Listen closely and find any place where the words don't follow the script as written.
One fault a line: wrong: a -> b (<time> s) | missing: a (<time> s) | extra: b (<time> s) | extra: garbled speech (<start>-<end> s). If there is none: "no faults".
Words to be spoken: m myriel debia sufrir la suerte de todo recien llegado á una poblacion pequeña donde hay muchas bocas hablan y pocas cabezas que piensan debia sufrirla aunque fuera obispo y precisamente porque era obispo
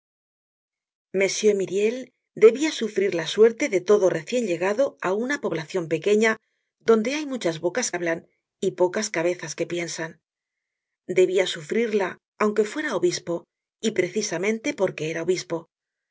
no faults